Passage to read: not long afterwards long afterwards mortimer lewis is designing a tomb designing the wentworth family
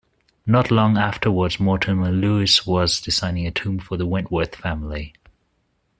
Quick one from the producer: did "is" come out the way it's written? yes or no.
no